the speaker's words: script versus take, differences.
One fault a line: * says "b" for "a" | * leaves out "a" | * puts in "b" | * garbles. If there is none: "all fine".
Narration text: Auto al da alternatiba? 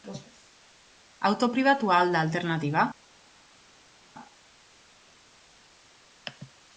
* puts in "pribatua"